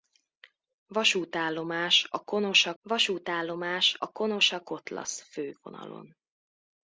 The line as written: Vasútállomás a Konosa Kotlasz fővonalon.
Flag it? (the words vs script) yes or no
yes